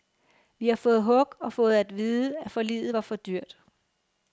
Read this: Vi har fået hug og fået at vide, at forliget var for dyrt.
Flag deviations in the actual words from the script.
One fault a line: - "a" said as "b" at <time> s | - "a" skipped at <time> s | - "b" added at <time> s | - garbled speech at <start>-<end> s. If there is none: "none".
none